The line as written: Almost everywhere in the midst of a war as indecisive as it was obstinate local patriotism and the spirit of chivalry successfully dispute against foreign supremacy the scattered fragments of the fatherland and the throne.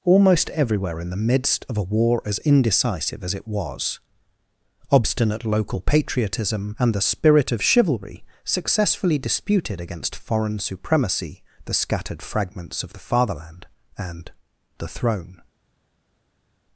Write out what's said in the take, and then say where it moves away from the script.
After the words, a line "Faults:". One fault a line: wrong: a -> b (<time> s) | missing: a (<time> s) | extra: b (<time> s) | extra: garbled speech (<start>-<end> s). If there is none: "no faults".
Almost everywhere in the midst of a war as indecisive as it was obstinate local patriotism and the spirit of chivalry successfully disputed against foreign supremacy the scattered fragments of the fatherland and the throne.
Faults:
wrong: dispute -> disputed (9.2 s)